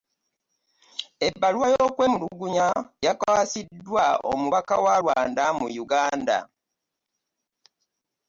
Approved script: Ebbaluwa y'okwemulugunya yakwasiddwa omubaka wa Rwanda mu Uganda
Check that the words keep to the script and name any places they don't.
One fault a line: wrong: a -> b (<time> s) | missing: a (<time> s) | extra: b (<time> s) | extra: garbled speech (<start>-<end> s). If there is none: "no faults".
no faults